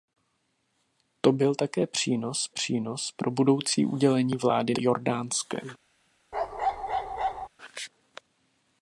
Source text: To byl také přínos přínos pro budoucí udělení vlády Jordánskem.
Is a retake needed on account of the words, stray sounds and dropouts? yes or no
yes